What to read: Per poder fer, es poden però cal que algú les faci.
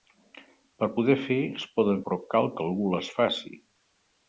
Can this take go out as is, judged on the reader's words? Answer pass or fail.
pass